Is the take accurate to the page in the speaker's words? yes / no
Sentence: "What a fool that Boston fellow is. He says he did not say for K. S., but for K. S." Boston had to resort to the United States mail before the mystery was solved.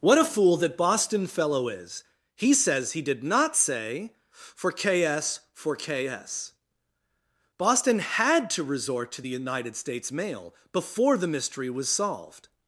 no